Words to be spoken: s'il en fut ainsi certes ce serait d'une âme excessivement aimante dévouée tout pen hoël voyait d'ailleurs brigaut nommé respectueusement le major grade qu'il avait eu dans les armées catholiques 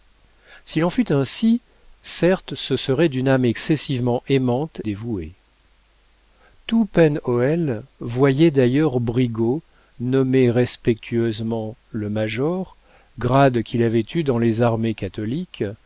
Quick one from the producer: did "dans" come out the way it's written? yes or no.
yes